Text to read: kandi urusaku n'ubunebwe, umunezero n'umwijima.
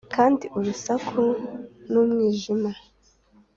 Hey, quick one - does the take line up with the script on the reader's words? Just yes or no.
no